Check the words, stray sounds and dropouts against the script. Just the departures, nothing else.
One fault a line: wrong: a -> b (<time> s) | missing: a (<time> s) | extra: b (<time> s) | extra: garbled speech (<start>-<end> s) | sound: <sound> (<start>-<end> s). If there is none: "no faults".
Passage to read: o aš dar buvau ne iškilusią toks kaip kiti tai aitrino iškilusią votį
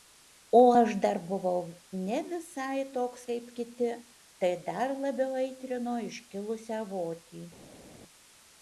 wrong: iškilusią -> visai (2.3 s)
extra: dar labiau (4.7 s)